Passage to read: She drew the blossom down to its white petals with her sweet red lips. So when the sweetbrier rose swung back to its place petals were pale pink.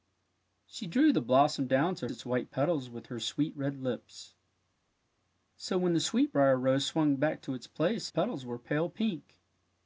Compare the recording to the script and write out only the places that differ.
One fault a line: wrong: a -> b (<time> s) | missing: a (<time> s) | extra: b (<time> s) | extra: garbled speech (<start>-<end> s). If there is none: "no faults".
no faults